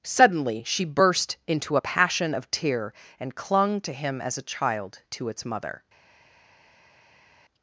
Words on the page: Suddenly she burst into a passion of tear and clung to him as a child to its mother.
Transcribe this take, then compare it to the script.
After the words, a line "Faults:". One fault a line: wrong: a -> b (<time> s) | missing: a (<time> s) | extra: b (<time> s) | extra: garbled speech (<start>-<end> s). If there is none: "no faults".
Suddenly she burst into a passion of tear and clung to him as a child to its mother.
Faults:
no faults